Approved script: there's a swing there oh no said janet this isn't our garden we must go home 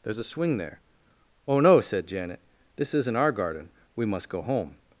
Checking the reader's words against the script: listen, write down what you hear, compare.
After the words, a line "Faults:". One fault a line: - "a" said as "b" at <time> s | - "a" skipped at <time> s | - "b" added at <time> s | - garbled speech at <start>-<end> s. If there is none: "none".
there's a swing there oh no said janet this isn't our garden we must go home
Faults:
none